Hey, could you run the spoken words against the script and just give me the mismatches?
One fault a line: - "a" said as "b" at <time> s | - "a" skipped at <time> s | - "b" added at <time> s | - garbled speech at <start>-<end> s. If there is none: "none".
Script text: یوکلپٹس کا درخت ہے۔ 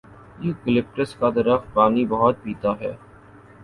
- "پانی بہت پیتا" added at 1.7 s